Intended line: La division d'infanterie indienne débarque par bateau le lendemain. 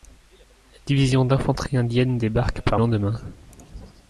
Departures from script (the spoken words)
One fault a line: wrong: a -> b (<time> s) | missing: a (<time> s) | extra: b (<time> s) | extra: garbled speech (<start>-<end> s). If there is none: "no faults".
missing: bateau le (2.8 s)